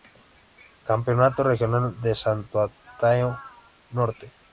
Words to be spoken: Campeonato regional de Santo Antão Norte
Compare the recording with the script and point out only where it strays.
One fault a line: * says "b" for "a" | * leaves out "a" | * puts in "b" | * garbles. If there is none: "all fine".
all fine